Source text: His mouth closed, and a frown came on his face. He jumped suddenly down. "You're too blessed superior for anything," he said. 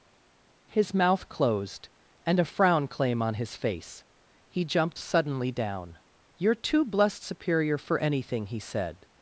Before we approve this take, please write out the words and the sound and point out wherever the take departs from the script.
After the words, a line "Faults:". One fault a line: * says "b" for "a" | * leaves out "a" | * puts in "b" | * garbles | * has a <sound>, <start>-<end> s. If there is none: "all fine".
His mouth closed, and a frown claim on his face. He jumped suddenly down. "You're too blessed superior for anything," he said.
Faults:
* says "claim" for "came"